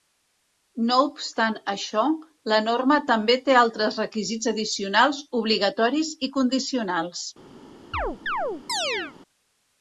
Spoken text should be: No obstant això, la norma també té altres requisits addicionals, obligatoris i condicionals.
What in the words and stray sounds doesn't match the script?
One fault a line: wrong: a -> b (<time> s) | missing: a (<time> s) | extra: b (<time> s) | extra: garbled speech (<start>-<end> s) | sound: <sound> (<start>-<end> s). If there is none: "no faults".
sound: chirp (7.9-9.1 s)